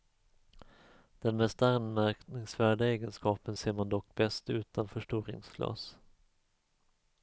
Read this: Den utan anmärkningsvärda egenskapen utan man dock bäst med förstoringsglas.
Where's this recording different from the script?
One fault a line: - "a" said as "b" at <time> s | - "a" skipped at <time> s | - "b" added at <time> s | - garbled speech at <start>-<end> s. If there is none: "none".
- "utan" said as "mest" at 1.4 s
- "utan" said as "ser" at 3.6 s
- "med" said as "utan" at 4.5 s